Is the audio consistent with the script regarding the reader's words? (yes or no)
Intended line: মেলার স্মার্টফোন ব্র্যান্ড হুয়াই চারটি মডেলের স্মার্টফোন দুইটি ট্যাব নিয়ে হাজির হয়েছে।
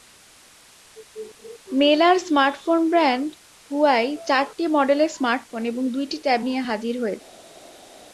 no